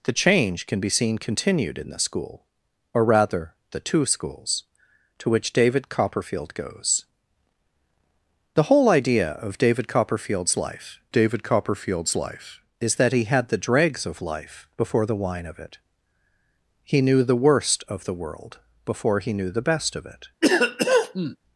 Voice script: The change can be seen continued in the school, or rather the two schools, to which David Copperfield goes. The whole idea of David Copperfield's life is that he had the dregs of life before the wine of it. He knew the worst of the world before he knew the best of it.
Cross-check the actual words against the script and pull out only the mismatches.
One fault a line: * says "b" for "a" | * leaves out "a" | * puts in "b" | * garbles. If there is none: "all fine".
* puts in "David Copperfield's life"